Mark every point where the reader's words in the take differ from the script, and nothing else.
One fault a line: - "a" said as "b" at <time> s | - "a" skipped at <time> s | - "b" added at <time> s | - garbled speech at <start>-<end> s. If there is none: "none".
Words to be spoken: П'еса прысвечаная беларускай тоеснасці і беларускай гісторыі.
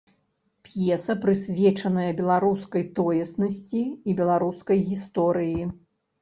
none